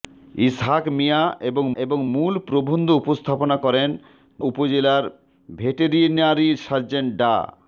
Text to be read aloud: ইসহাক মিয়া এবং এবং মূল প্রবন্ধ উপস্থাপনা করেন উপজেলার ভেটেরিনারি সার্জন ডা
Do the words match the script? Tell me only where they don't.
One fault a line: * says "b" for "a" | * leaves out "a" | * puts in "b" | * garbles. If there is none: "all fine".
all fine